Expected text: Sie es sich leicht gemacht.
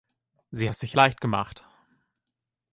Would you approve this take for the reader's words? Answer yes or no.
yes